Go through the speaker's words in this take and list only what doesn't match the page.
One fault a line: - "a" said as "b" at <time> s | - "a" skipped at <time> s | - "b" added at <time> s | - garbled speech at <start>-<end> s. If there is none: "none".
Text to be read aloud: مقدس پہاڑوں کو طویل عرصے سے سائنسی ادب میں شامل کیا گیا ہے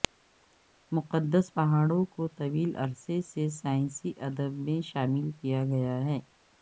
none